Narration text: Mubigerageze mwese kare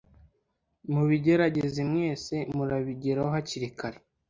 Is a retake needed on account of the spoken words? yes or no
yes